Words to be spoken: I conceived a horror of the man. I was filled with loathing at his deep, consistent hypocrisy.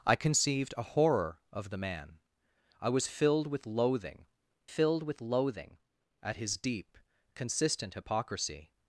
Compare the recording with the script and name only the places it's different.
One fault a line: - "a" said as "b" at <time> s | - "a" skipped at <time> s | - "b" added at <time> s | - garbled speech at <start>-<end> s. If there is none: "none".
- "filled with loathing" added at 4.6 s